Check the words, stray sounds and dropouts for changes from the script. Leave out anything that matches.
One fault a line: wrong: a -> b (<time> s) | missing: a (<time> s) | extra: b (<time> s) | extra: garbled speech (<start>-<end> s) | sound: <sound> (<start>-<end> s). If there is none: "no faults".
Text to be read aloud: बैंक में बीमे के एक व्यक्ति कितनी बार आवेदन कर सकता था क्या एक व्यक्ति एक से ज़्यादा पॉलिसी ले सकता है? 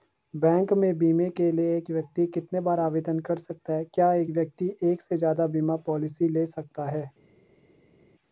extra: लिए (1.5 s)
wrong: था -> है (3.7 s)
extra: बीमा (5.5 s)